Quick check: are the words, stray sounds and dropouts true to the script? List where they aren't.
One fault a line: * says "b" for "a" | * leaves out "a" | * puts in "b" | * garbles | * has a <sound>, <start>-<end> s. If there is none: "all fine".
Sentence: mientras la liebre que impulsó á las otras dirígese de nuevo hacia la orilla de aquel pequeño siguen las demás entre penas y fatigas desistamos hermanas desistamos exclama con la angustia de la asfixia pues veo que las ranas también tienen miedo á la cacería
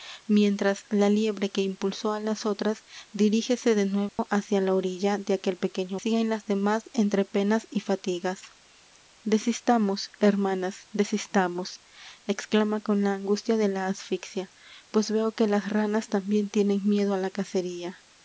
* has a dropout, 4.1-4.2 s